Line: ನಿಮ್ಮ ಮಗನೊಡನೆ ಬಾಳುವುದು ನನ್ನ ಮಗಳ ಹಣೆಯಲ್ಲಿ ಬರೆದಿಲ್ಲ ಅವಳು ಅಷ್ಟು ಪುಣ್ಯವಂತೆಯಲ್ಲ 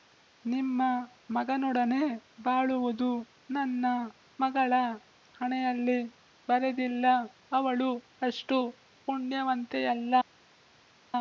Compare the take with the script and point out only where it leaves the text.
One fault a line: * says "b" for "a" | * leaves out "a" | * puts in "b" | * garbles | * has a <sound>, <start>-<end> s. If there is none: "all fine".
all fine